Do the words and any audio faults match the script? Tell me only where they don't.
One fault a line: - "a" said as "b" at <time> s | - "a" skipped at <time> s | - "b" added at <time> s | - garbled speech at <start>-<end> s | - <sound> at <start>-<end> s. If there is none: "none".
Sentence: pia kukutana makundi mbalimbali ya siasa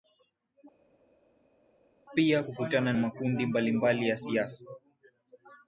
none